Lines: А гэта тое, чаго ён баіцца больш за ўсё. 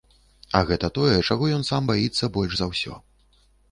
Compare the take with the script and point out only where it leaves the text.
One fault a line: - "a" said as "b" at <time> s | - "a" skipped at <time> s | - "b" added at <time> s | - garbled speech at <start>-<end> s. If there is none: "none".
- "сам" added at 1.7 s